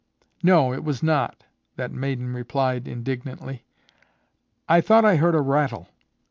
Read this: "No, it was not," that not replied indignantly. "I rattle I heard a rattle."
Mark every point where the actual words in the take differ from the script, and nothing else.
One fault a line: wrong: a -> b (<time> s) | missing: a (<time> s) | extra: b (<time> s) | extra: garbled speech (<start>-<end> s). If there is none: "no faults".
wrong: not -> maiden (1.9 s)
wrong: rattle -> thought (4.8 s)